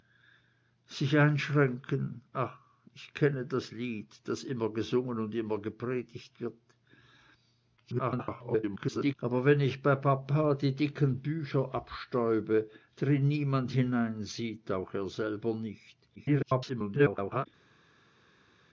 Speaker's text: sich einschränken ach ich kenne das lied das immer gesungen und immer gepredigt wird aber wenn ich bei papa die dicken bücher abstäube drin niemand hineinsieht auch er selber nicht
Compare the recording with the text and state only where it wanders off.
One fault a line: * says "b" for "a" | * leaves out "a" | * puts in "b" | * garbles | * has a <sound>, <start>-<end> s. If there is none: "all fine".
* garbles
* garbles